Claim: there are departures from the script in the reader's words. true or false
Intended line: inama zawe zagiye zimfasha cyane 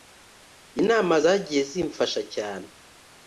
true